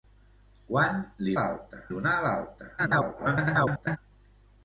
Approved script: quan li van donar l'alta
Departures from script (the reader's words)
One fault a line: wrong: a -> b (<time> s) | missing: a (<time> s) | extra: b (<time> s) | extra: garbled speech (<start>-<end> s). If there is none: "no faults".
wrong: van -> l'alta (1.4 s)
extra: garbled speech (2.8-4.0 s)